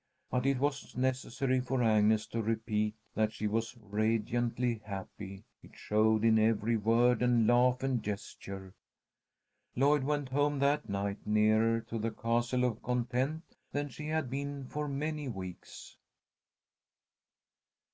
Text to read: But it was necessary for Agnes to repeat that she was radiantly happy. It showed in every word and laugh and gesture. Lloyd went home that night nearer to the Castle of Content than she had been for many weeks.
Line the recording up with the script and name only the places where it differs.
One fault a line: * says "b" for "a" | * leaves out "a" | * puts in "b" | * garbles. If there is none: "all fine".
all fine